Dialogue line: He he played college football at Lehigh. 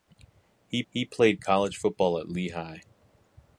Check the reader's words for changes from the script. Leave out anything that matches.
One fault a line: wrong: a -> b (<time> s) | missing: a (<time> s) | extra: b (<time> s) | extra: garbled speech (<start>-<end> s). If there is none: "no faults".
no faults